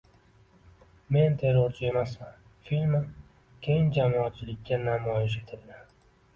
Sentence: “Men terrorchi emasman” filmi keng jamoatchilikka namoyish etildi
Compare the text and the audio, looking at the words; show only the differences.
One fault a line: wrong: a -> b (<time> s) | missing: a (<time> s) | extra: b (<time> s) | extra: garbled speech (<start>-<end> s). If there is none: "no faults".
no faults